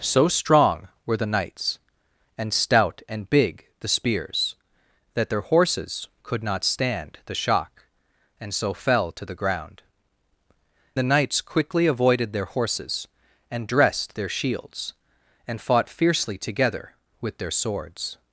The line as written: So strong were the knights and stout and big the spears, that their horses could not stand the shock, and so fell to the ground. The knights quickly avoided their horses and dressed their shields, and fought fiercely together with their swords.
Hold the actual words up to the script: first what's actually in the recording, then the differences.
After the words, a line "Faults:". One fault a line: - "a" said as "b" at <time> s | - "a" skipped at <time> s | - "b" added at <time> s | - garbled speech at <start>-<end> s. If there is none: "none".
So strong were the knights and stout and big the spears, that their horses could not stand the shock, and so fell to the ground. The knights quickly avoided their horses and dressed their shields, and fought fiercely together with their swords.
Faults:
none